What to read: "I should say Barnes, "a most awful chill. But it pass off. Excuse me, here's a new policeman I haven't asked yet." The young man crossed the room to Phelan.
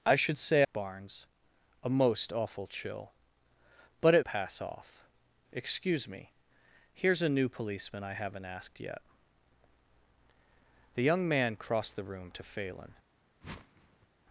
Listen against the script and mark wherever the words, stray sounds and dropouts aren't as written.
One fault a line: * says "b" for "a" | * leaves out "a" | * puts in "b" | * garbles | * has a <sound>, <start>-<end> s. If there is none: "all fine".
* has a whoosh, 13.4-14.1 s